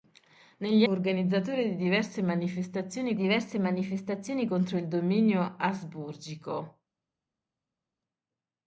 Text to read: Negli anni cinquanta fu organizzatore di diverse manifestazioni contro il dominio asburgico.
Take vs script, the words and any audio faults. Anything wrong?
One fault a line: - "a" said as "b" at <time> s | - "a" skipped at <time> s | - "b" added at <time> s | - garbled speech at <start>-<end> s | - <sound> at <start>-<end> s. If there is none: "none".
- "anni cinquanta fu organizzatore di" said as "organizzatore di diverse manifestazioni" at 0.9 s